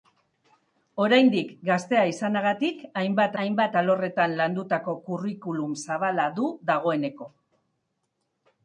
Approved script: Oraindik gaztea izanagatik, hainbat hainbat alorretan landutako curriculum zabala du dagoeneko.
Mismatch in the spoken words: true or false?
false